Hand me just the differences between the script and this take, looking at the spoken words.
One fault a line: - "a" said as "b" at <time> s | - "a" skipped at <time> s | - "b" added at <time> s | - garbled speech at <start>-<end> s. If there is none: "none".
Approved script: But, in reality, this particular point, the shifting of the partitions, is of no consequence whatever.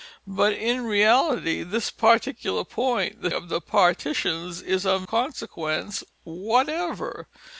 - "shifting" skipped at 3.3 s
- "no" skipped at 5.0 s